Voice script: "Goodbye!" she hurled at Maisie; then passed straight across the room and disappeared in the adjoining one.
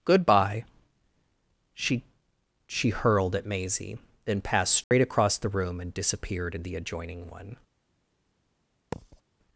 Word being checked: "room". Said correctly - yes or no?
yes